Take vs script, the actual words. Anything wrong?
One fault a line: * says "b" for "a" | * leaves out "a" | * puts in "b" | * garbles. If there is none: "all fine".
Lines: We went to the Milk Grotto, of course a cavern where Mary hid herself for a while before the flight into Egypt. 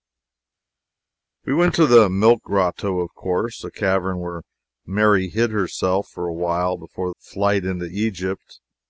* leaves out "the"